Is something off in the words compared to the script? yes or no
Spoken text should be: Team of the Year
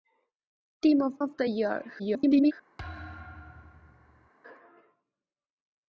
yes